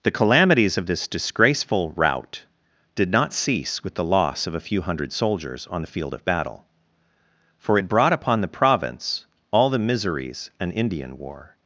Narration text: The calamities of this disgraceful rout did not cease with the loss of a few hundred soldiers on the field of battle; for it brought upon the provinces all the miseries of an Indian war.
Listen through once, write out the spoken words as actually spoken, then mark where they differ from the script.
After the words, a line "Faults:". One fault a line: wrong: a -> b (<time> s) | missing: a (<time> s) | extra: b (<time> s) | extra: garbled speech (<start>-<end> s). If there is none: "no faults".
The calamities of this disgraceful rout did not cease with the loss of a few hundred soldiers on the field of battle; for it brought upon the province all the miseries an Indian war.
Faults:
wrong: provinces -> province (8.5 s)
missing: of (10.5 s)